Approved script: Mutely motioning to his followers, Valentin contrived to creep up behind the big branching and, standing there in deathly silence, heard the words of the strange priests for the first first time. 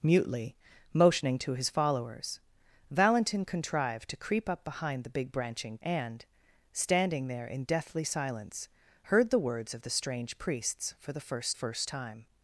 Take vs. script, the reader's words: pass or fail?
pass